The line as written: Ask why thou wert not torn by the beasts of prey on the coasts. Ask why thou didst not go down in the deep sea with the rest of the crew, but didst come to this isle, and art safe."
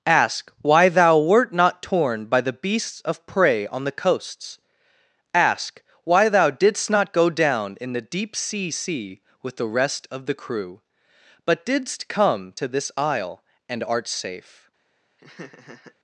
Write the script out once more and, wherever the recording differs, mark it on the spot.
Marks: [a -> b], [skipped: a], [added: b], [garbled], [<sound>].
Ask why thou wert not torn by the beasts of prey on the coasts. Ask why thou didst not go down in the deep sea [added: sea] with the rest of the crew, but didst come to this isle, and art safe." [laugh]